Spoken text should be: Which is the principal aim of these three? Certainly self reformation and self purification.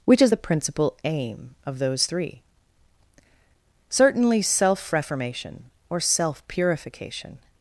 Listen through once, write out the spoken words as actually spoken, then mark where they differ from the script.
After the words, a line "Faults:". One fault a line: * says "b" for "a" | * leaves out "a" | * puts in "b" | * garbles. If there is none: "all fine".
Which is the principal aim of those three? Certainly self reformation or self purification.
Faults:
* says "those" for "these"
* says "or" for "and"